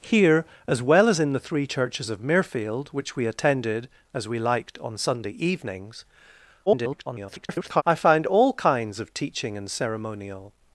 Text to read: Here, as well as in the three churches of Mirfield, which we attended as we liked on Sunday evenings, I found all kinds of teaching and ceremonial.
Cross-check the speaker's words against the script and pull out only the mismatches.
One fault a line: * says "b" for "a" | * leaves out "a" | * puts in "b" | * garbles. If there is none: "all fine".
* garbles